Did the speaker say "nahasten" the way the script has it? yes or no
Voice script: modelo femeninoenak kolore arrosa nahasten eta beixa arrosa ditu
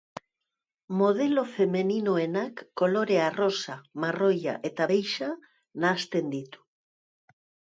no